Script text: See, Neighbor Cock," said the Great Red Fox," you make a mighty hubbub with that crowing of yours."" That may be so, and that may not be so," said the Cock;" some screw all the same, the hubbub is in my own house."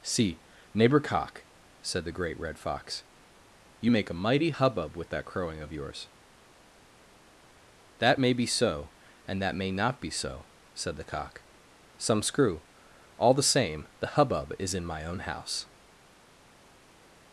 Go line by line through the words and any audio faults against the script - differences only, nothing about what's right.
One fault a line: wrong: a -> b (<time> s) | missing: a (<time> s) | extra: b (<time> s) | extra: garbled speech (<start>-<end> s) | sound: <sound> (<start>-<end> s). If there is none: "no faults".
no faults